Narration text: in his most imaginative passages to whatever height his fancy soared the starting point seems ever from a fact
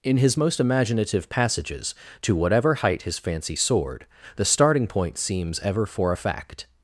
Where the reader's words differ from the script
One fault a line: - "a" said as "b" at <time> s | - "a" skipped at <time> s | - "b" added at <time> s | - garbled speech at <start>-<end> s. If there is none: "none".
- "from" said as "for" at 5.9 s